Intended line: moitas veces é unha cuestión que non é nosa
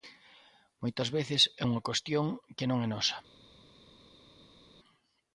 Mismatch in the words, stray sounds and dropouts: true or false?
false